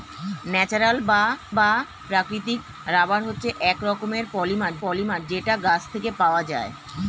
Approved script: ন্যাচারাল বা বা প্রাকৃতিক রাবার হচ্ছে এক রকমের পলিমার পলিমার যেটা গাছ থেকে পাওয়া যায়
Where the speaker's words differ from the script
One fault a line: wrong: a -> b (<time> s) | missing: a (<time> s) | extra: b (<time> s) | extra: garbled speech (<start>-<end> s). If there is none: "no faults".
no faults